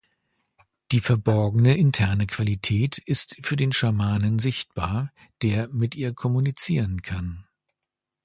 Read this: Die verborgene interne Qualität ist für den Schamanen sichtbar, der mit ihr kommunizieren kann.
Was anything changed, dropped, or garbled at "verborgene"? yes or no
no